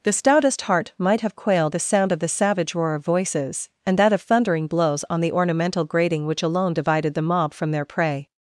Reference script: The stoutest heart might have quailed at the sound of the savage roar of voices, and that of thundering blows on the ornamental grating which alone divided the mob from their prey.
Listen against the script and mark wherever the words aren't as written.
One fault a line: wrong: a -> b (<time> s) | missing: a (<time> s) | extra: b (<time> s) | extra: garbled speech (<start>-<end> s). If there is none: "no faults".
missing: at (1.8 s)